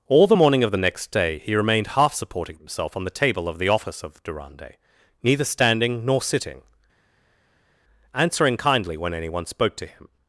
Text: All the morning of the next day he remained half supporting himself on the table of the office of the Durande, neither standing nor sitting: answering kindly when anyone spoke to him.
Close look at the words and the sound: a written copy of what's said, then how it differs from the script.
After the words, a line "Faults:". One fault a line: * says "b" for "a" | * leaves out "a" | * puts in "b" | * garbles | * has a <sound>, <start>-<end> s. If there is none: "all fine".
All the morning of the next day he remained half supporting himself on the table of the office of Durande, neither standing nor sitting: answering kindly when anyone spoke to him.
Faults:
* leaves out "the"